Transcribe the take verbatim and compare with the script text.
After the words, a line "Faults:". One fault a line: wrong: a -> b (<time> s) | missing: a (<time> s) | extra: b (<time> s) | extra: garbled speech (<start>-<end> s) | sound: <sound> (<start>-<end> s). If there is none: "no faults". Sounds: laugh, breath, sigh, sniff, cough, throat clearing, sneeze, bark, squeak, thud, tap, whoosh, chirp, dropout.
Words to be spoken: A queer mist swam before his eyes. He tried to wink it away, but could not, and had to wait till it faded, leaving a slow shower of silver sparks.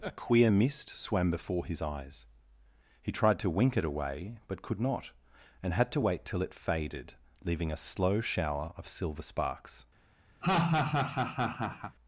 A queer mist swam before his eyes. He tried to wink it away, but could not, and had to wait till it faded, leaving a slow shower of silver sparks.
Faults:
sound: laugh (10.4-12.0 s)